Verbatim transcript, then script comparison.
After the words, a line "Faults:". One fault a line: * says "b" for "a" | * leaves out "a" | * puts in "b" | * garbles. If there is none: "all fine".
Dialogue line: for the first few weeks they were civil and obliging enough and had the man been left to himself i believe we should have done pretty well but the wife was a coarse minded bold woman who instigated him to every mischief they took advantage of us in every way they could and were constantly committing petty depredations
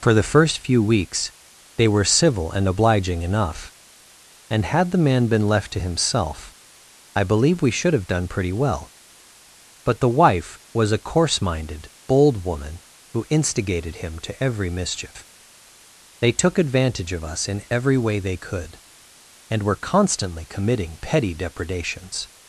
for the first few weeks they were civil and obliging enough and had the man been left to himself i believe we should have done pretty well but the wife was a coarse minded bold woman who instigated him to every mischief they took advantage of us in every way they could and were constantly committing petty depredations
Faults:
all fine